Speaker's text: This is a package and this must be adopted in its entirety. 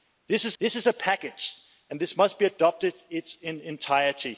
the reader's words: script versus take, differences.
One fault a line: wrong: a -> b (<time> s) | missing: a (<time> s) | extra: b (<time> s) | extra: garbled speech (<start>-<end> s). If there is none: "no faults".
extra: this is (0.6 s)